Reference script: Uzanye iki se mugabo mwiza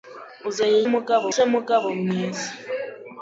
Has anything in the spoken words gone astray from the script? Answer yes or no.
yes